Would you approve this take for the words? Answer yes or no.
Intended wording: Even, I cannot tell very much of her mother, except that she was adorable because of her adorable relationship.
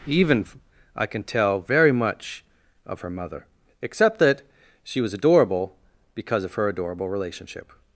no